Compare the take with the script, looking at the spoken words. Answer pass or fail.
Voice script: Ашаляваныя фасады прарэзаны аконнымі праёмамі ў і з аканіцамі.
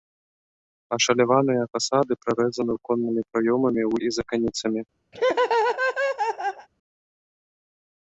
pass